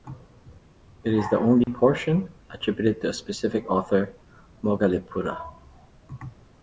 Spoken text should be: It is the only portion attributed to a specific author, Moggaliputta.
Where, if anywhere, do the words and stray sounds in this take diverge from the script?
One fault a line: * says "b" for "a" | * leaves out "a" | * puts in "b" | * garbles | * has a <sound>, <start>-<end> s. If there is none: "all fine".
* has a dropout, 1.6-1.7 s